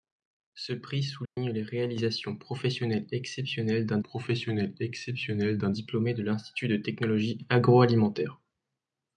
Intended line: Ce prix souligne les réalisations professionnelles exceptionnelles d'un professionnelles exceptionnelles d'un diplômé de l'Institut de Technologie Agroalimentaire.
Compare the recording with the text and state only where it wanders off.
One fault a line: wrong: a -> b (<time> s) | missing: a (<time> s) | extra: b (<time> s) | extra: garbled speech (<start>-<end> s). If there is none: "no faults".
no faults